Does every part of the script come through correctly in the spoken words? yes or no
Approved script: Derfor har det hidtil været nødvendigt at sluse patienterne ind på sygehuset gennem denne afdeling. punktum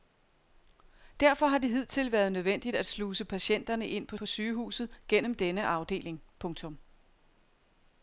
no